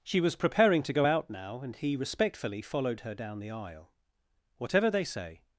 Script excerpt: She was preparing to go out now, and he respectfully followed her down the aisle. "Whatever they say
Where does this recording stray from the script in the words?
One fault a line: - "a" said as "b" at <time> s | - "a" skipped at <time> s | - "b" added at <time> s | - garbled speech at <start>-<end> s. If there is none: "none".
none